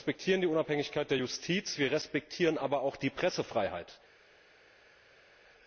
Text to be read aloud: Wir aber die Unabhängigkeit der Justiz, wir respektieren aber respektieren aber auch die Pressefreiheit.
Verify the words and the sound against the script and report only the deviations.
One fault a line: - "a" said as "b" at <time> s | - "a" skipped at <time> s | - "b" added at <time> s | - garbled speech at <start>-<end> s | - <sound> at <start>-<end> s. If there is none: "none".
- "aber" said as "respektieren" at 0.1 s
- "respektieren aber" skipped at 2.8 s